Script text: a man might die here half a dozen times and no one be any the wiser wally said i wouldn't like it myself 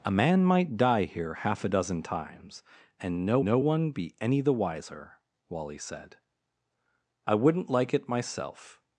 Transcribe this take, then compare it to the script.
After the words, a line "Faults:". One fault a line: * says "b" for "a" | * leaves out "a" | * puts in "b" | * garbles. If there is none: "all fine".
a man might die here half a dozen times and no no one be any the wiser wally said i wouldn't like it myself
Faults:
* puts in "no"